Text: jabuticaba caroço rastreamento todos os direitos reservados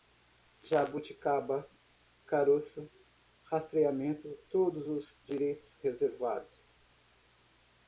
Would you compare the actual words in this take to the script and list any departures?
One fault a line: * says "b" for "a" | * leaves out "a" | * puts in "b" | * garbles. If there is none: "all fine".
all fine